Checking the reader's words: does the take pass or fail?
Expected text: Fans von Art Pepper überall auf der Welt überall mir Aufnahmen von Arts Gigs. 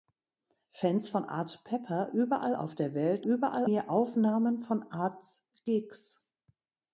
pass